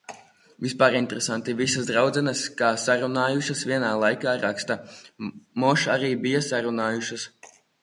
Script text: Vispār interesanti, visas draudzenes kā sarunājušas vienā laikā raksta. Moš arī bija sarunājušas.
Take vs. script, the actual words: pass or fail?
pass